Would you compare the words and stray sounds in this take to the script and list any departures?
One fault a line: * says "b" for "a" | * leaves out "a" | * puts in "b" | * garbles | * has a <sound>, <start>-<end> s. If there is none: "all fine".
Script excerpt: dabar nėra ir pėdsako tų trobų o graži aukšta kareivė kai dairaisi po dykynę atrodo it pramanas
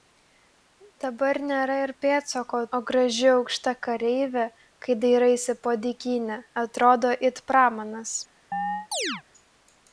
* leaves out "tų trobų"
* has a chirp, 8.5-9.2 s